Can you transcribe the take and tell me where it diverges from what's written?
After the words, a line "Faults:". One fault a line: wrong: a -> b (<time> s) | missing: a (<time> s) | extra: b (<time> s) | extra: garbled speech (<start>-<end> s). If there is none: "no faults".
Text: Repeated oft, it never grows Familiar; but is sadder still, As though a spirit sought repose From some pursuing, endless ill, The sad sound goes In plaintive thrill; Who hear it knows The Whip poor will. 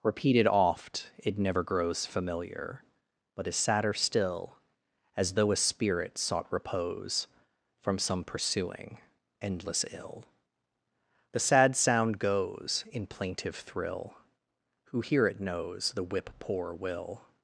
Repeated oft, it never grows Familiar; but is sadder still, As though a spirit sought repose From some pursuing, endless ill, The sad sound goes In plaintive thrill; Who hear it knows The Whip poor will.
Faults:
no faults